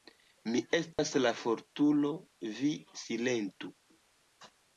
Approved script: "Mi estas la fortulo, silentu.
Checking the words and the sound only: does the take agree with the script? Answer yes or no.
no